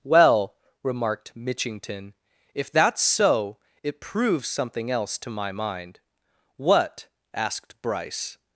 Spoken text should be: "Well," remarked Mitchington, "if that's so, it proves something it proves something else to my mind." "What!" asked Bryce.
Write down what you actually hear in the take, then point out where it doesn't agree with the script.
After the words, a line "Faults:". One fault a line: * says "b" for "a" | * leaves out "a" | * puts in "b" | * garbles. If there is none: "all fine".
"Well," remarked Mitchington, "if that's so, it proves something else to my mind." "What!" asked Bryce.
Faults:
* leaves out "it proves something"